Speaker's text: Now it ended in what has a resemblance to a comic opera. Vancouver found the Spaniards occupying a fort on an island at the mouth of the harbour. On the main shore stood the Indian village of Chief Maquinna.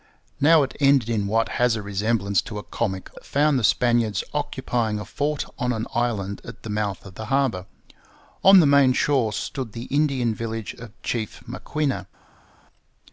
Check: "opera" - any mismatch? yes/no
yes